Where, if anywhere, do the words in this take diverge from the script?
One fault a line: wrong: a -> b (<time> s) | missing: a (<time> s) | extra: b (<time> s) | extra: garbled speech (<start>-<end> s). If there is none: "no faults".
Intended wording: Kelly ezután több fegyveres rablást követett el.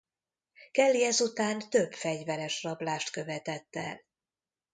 no faults